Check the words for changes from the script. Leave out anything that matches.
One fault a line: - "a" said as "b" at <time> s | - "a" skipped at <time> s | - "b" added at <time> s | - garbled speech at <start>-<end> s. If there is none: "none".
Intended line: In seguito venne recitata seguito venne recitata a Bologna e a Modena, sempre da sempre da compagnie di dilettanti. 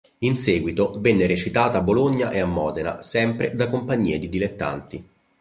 - "seguito venne recitata" skipped at 1.8 s
- "sempre da" skipped at 3.7 s